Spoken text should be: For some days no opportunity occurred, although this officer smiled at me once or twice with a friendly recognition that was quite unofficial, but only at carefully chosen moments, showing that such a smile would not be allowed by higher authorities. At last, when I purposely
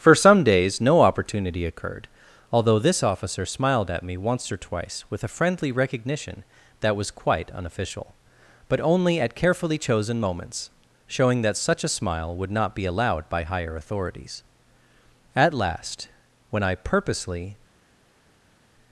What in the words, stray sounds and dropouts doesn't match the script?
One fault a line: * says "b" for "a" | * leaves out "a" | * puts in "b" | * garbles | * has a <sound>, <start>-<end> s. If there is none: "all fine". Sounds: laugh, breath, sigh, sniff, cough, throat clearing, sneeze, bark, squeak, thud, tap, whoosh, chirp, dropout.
all fine